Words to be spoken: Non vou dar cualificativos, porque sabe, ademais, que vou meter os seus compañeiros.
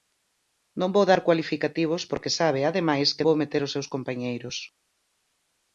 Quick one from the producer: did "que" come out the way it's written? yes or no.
yes